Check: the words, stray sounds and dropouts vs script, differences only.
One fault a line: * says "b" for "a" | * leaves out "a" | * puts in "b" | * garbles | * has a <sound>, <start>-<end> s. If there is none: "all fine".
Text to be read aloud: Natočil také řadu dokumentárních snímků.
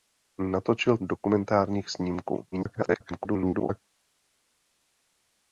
* leaves out "také řadu"
* garbles